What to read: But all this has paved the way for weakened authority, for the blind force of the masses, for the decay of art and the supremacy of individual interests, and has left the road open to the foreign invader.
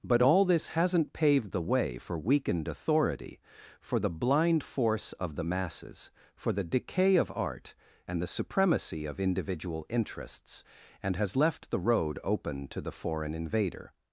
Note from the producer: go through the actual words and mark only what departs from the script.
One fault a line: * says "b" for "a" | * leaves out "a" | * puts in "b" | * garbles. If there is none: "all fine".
* says "hasn't" for "has"